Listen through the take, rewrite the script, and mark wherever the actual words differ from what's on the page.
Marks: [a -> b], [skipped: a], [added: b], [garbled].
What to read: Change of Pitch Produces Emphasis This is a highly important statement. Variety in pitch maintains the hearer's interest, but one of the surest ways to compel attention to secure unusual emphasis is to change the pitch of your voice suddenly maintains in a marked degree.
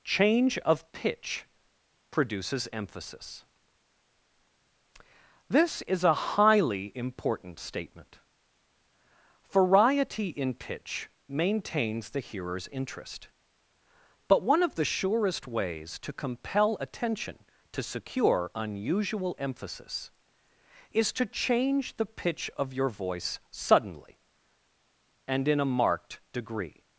Change of Pitch Produces Emphasis This is a highly important statement. Variety in pitch maintains the hearer's interest, but one of the surest ways to compel attention to secure unusual emphasis is to change the pitch of your voice suddenly [maintains -> and] in a marked degree.